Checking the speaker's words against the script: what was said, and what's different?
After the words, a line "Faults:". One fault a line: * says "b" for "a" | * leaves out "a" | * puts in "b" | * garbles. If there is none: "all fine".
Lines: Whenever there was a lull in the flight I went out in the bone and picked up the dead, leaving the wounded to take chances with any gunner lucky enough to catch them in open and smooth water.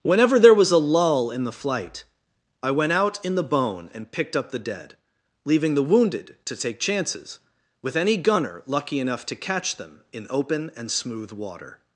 Whenever there was a lull in the flight I went out in the bone and picked up the dead, leaving the wounded to take chances with any gunner lucky enough to catch them in open and smooth water.
Faults:
all fine